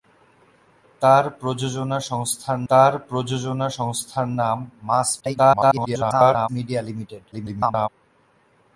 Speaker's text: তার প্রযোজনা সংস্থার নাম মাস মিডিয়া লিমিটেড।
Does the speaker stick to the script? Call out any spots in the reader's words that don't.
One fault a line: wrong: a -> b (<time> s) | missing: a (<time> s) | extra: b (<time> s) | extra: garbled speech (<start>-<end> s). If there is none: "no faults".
extra: তার প্রযোজনা সংস্থার (2.7 s)
extra: garbled speech (5.2-6.5 s)
extra: garbled speech (7.3-7.9 s)